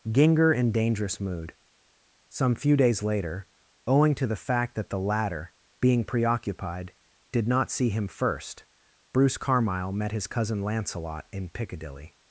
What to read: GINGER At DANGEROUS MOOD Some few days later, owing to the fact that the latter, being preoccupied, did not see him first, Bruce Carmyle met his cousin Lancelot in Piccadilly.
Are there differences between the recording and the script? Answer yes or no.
yes